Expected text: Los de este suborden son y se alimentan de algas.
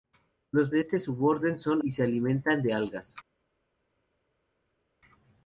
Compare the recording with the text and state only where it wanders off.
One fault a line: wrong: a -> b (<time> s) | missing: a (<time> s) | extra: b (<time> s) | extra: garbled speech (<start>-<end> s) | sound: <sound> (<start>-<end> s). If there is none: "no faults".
no faults